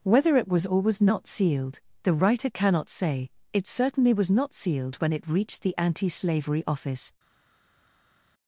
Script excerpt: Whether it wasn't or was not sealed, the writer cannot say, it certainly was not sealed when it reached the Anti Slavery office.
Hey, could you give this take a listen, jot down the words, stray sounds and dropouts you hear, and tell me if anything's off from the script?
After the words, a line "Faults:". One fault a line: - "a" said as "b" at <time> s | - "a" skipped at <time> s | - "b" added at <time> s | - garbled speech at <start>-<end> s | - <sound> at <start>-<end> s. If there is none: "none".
Whether it was or was not sealed, the writer cannot say, it certainly was not sealed when it reached the Anti Slavery office.
Faults:
- "wasn't" said as "was" at 0.5 s